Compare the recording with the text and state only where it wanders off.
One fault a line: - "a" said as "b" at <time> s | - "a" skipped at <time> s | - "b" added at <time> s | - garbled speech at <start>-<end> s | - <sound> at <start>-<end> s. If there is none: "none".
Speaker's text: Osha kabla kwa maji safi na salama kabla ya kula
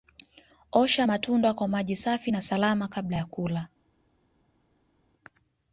- "kabla" said as "matunda" at 1.0 s